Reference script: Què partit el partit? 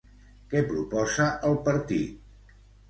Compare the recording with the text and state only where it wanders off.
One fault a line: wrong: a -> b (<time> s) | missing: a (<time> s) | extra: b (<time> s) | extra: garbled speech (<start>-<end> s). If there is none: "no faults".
wrong: partit -> proposa (0.7 s)